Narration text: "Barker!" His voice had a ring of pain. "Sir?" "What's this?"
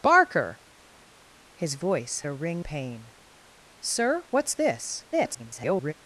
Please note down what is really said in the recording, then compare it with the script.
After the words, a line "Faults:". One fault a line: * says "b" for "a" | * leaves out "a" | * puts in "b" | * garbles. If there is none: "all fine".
"Barker!" His voice a ring pain. "Sir?" "What's this?" [garbled]
Faults:
* leaves out "had"
* leaves out "of"
* garbles